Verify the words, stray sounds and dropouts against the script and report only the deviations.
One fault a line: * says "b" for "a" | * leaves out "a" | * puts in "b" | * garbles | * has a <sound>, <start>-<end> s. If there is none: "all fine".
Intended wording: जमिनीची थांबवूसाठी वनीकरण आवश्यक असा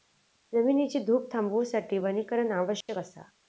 * puts in "धूप"
* has a dropout, 2.8-2.9 s